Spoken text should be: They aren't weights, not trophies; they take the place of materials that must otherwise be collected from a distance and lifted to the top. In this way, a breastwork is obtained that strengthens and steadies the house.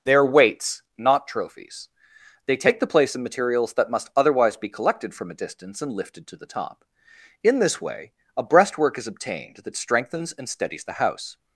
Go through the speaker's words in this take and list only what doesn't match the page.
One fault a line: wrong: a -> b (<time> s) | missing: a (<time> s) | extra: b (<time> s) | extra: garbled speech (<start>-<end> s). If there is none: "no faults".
wrong: aren't -> are (0.1 s)